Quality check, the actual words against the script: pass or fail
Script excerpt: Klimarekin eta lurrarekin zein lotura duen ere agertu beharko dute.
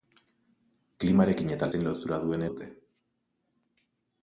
fail